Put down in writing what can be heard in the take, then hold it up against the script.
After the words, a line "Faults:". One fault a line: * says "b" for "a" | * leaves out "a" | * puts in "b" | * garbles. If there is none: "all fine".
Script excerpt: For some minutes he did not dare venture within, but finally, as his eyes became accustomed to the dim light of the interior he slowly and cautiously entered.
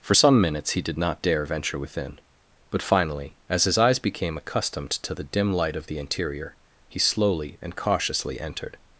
For some minutes he did not dare venture within, but finally, as his eyes became accustomed to the dim light of the interior he slowly and cautiously entered.
Faults:
all fine